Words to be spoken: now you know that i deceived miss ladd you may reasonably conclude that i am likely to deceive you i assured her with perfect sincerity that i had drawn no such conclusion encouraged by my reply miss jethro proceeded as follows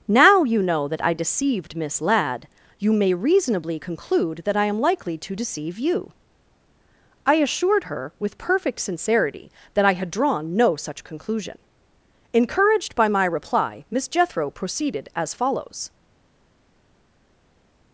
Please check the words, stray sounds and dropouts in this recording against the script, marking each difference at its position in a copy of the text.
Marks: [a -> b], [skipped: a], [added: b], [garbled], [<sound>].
now you know that i deceived miss ladd you may reasonably conclude that i am likely to deceive you i assured her with perfect sincerity that i had drawn no such conclusion encouraged by my reply miss jethro proceeded as follows